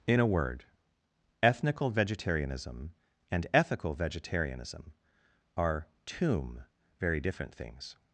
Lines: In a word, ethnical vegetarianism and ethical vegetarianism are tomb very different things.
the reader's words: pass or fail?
pass